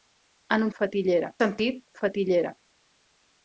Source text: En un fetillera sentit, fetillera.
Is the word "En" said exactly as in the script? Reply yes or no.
yes